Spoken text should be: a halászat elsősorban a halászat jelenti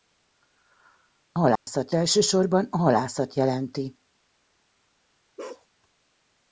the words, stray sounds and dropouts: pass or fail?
fail